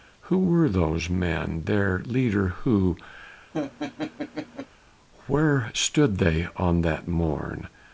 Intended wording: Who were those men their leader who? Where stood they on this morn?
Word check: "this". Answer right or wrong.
wrong